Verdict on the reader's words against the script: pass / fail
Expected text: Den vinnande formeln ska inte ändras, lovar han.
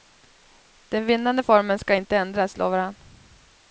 pass